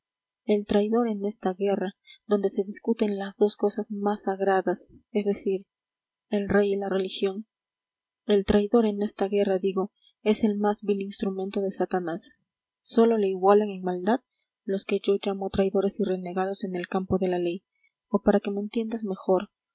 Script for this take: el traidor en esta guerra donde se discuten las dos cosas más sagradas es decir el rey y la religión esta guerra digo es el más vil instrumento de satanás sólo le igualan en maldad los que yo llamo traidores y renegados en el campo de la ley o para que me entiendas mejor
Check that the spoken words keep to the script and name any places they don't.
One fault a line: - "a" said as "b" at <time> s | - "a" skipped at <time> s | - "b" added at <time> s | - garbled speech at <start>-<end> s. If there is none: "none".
- "el traidor en" added at 8.2 s